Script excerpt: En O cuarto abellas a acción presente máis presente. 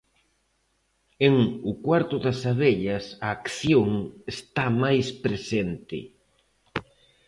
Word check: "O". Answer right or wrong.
right